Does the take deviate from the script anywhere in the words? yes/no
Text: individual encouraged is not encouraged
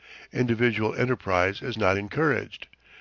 yes